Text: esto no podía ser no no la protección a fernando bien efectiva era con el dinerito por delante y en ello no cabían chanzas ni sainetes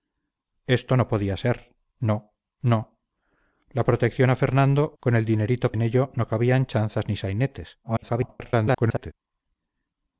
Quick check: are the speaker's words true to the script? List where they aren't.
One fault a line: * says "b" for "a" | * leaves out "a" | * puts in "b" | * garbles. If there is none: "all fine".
* leaves out "bien efectiva era"
* leaves out "por delante y"
* garbles